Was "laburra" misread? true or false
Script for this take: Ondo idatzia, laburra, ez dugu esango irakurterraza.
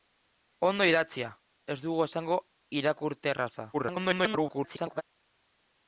true